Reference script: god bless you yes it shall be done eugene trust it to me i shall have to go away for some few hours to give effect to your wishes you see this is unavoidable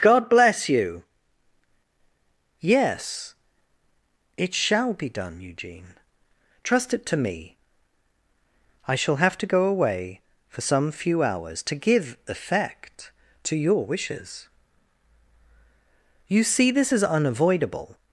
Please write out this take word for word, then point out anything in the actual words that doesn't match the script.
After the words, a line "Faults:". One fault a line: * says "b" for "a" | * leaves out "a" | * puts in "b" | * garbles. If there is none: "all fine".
god bless you yes it shall be done eugene trust it to me i shall have to go away for some few hours to give effect to your wishes you see this is unavoidable
Faults:
all fine